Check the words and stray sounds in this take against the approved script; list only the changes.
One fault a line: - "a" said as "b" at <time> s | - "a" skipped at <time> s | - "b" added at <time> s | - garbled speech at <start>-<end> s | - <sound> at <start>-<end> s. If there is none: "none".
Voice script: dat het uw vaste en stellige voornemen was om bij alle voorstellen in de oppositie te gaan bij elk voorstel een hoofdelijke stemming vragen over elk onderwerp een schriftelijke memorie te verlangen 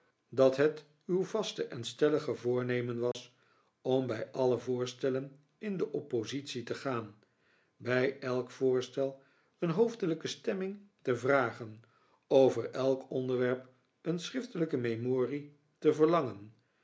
- dropout at 3.1-3.1 s
- "te" added at 11.0 s